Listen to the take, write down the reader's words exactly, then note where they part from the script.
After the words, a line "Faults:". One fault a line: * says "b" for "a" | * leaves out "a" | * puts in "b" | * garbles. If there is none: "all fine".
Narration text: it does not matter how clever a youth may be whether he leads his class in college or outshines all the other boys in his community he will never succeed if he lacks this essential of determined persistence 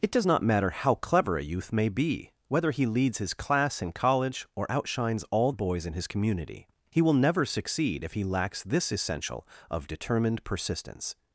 it does not matter how clever a youth may be whether he leads his class in college or outshines all boys in his community he will never succeed if he lacks this essential of determined persistence
Faults:
* leaves out "the other"